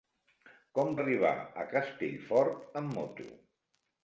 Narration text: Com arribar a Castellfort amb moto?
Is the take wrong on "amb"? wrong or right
right